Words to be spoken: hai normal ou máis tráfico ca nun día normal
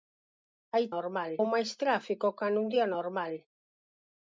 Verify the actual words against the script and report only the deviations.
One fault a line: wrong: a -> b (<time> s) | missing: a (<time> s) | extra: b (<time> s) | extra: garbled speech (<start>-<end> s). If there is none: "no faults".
no faults